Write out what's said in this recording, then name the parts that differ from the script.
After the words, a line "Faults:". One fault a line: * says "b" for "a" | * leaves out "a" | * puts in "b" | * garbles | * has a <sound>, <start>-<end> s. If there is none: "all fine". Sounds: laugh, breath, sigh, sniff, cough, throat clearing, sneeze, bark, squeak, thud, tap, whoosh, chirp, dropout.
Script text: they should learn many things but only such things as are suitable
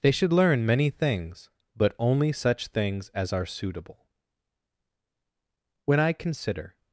they should learn many things but only such things as are suitable when i consider
Faults:
* puts in "when i consider"